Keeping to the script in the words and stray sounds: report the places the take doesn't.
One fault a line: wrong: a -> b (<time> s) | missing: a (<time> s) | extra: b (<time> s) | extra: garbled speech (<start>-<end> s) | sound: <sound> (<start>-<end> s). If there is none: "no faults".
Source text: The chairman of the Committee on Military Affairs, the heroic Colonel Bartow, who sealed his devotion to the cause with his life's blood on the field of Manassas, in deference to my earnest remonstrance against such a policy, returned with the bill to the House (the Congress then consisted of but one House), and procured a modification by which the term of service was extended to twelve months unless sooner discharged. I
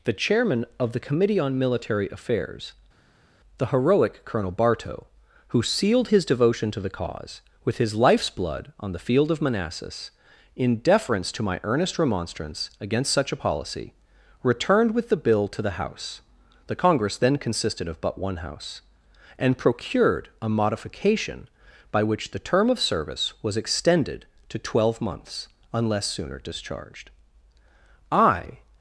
no faults